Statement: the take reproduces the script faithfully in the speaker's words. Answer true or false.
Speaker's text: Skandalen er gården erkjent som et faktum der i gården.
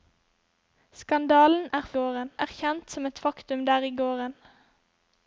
true